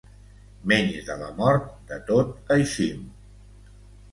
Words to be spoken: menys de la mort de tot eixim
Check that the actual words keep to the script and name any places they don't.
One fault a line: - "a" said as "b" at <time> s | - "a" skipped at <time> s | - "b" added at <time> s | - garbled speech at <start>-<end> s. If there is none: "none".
none